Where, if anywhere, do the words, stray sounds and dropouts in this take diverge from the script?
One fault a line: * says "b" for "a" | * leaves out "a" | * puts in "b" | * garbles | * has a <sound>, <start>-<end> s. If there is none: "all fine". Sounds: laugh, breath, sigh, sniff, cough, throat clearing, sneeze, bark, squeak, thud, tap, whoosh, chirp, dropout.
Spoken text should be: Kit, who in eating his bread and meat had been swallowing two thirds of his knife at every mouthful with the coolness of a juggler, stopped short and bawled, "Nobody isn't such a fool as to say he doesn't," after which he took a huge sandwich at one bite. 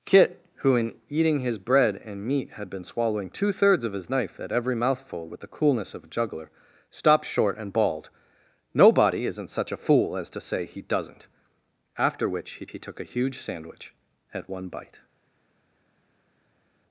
* puts in "he"